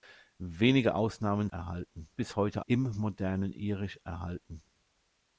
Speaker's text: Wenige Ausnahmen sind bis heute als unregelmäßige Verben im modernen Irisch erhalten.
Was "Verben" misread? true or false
true